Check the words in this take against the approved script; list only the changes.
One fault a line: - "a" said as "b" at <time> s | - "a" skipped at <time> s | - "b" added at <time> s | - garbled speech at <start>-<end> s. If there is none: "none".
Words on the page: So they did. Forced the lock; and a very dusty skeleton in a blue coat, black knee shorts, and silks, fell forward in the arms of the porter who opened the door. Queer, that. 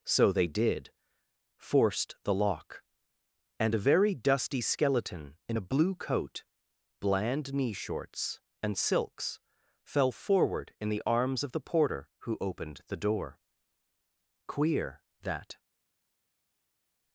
- "black" said as "bland" at 7.0 s